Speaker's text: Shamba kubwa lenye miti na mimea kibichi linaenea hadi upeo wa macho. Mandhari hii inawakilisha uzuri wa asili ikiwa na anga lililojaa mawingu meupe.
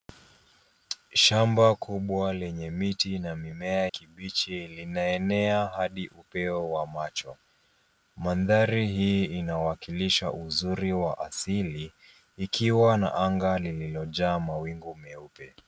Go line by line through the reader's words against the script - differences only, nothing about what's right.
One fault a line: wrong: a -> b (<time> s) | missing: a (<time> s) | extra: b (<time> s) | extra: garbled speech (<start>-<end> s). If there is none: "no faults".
no faults